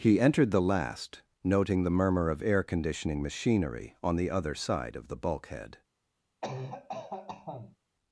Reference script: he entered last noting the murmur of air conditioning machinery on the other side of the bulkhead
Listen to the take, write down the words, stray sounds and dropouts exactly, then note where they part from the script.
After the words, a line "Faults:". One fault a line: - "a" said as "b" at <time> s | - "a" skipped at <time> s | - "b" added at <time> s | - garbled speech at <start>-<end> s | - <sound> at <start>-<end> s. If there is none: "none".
he entered the last noting the murmur of air conditioning machinery on the other side of the bulkhead
Faults:
- "the" added at 0.5 s
- cough at 6.4-7.8 s